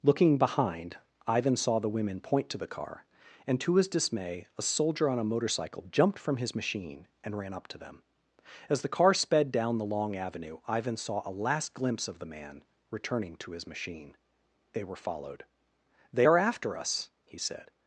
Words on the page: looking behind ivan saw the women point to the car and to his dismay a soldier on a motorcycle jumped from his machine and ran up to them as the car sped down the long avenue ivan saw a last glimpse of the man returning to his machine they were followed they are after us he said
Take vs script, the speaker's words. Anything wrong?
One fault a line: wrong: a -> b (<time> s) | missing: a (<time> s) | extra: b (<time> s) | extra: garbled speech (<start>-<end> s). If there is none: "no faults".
no faults